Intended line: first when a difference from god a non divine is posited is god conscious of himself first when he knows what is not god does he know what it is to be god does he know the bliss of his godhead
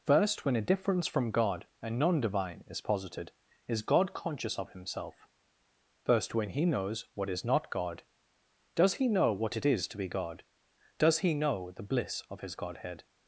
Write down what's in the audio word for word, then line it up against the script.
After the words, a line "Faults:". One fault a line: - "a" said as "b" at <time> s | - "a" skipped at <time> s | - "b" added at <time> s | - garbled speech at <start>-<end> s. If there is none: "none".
first when a difference from god a non divine is posited is god conscious of himself first when he knows what is not god does he know what it is to be god does he know the bliss of his godhead
Faults:
none